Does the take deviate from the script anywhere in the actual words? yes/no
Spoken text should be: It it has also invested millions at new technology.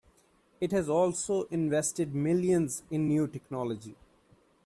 yes